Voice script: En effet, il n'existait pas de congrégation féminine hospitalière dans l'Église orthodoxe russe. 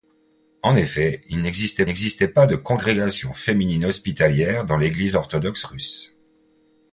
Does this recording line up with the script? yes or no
no